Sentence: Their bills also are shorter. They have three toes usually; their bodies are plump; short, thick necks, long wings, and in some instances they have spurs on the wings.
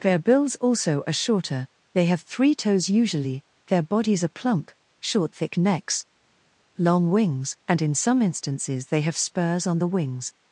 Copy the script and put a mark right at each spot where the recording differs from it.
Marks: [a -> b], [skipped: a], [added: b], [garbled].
Their bills also are shorter. They have three toes usually; their bodies are plump; short, thick necks, long wings, and in some instances they have spurs on the wings.